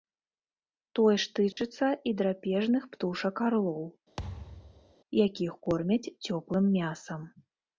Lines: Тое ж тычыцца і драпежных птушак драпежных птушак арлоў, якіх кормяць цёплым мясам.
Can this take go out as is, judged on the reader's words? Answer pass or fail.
fail